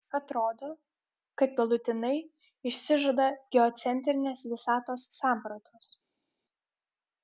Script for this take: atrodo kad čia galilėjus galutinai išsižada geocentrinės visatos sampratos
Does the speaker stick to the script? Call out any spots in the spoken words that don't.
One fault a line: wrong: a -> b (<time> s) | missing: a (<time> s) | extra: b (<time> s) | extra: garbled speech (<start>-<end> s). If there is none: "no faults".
missing: čia galilėjus (1.5 s)